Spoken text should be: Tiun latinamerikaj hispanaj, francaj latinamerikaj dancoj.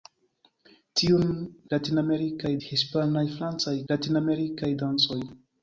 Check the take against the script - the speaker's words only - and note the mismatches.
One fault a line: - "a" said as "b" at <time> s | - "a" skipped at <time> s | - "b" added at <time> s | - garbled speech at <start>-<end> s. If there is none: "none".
none